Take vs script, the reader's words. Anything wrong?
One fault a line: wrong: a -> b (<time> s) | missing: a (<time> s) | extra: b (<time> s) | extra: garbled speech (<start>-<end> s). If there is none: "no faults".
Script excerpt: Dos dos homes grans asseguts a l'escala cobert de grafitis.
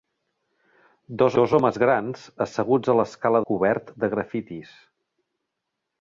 no faults